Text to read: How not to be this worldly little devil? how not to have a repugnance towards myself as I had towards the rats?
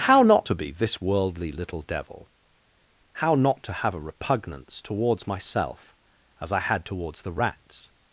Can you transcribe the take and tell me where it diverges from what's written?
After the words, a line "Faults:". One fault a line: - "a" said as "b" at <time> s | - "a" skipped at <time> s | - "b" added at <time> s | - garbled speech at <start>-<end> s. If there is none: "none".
How not to be this worldly little devil? how not to have a repugnance towards myself as I had towards the rats?
Faults:
none